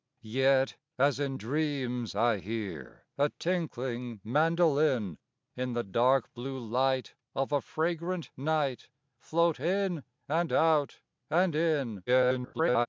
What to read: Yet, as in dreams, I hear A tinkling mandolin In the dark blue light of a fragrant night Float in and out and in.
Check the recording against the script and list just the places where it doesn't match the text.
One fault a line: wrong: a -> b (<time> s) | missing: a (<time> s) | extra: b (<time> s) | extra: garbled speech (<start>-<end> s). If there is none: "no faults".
extra: garbled speech (12.1-12.9 s)